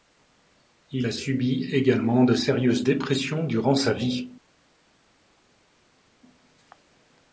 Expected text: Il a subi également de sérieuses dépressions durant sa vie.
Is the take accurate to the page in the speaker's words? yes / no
yes